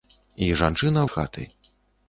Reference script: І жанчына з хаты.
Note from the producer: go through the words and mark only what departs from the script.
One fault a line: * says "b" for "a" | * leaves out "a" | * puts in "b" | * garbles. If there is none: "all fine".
all fine